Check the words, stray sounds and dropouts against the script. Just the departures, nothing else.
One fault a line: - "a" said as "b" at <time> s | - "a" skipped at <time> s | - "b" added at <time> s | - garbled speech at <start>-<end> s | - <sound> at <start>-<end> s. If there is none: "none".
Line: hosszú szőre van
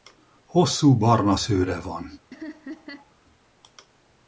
- "barna" added at 1.0 s
- laugh at 2.3-3.1 s